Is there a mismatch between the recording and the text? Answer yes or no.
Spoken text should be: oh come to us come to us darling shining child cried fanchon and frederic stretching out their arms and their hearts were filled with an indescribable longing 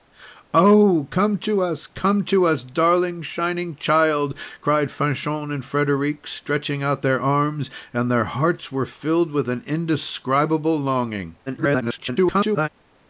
yes